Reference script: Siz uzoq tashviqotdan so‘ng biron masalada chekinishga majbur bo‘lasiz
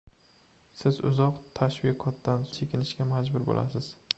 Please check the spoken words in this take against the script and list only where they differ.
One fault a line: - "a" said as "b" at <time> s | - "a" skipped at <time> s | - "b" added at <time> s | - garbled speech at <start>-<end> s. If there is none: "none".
- "so‘ng biron masalada" skipped at 2.5 s